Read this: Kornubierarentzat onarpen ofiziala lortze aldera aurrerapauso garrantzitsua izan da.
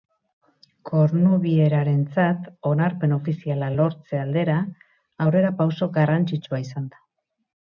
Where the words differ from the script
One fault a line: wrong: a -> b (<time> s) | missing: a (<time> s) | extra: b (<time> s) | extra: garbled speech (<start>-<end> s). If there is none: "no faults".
no faults